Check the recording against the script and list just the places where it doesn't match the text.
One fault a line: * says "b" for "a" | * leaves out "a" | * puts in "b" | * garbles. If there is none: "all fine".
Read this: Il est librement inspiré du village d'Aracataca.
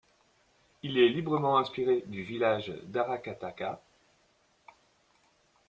all fine